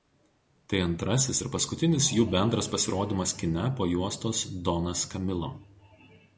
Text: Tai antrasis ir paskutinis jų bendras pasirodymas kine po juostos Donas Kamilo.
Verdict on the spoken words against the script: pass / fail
pass